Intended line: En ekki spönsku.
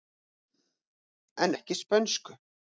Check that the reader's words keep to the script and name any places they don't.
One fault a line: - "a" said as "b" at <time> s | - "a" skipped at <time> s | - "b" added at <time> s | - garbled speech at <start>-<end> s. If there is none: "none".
none